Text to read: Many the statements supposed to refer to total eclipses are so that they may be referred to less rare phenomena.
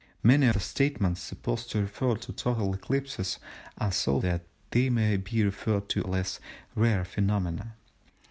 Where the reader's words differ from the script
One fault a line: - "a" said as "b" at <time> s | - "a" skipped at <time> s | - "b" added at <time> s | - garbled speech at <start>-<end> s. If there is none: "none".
none